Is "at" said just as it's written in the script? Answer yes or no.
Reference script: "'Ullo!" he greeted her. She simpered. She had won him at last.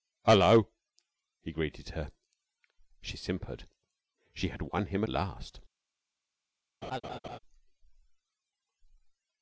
no